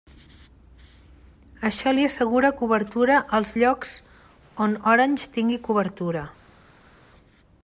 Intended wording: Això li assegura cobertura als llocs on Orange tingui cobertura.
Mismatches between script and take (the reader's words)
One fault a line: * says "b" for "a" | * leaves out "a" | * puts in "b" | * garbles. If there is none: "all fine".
all fine